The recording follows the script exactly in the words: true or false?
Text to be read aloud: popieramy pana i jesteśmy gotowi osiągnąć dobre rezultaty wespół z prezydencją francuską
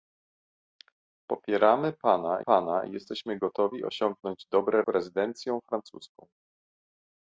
false